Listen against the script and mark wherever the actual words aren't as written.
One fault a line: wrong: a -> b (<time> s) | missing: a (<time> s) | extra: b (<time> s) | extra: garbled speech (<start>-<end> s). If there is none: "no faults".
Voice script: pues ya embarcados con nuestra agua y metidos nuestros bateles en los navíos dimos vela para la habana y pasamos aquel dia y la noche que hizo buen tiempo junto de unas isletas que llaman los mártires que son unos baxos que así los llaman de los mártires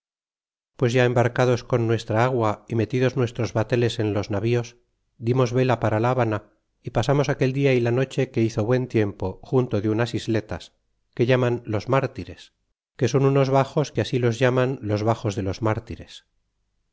extra: los baxos (14.8 s)